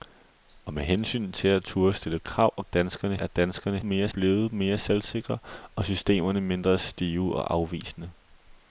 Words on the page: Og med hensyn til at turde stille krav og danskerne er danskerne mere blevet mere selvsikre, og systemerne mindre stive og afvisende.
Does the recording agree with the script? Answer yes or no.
yes